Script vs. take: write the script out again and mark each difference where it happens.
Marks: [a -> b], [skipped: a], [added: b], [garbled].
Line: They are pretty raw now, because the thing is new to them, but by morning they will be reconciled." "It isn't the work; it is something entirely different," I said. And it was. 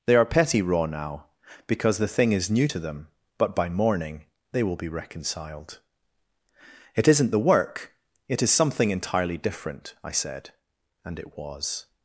They are [pretty -> petty] raw now, because the thing is new to them, but by morning they will be reconciled." "It isn't the work; it is something entirely different," I said. And it was.